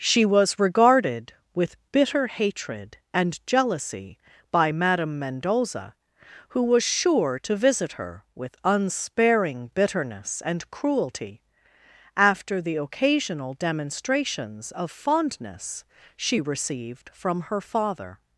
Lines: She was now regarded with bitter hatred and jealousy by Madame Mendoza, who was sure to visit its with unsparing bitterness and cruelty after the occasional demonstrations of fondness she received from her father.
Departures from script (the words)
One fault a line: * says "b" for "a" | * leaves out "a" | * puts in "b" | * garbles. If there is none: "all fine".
* leaves out "now"
* says "her" for "its"